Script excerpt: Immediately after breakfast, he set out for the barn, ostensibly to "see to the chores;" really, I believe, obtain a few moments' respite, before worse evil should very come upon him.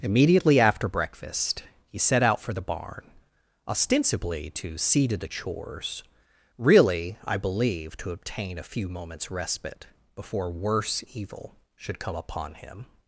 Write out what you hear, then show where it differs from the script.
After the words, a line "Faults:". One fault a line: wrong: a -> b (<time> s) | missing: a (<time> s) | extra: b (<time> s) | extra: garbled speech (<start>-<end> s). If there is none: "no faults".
Immediately after breakfast, he set out for the barn, ostensibly to "see to the chores;" really, I believe, to obtain a few moments' respite, before worse evil should come upon him.
Faults:
extra: to (8.0 s)
missing: very (12.0 s)